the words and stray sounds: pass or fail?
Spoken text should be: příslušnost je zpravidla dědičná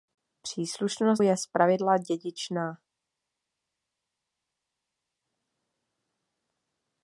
pass